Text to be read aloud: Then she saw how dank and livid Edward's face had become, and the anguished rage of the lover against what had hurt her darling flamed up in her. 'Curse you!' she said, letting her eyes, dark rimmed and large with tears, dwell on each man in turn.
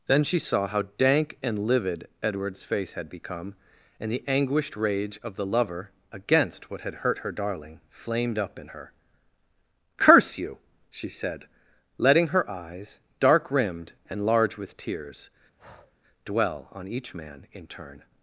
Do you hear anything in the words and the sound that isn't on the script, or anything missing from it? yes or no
yes